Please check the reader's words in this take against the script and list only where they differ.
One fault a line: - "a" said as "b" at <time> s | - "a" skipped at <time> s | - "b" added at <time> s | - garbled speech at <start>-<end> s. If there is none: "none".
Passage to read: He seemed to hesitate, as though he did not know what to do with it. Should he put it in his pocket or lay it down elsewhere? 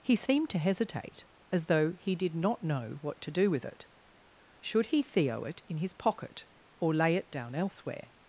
- "put" said as "theo" at 5.0 s